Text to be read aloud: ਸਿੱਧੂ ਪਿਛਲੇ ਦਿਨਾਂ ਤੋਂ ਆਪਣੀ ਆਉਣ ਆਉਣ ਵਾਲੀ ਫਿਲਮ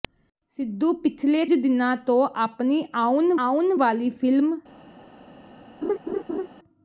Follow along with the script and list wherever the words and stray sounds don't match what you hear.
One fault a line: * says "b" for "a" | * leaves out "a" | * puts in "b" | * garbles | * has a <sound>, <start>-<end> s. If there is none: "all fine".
* has a laugh, 5.8-6.5 s